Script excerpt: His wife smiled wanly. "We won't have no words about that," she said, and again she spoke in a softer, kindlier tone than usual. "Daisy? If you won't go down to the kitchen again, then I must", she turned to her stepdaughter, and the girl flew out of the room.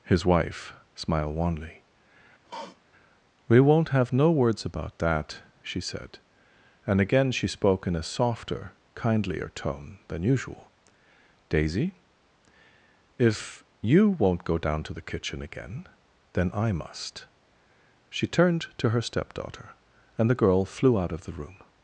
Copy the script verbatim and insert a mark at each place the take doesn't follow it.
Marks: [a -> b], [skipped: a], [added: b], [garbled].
His wife smiled wanly. "We won't have no words about that," she said, and again she spoke in a softer, kindlier tone than usual. "Daisy? If you won't go down to the kitchen again, then I must", she turned to her stepdaughter, and the girl flew out of the room.